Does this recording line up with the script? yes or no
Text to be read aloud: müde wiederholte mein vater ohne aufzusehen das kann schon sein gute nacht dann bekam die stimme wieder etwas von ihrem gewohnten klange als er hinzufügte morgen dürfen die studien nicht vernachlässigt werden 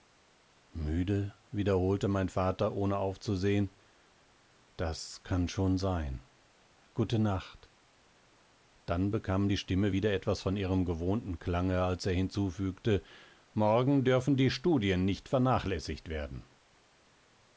yes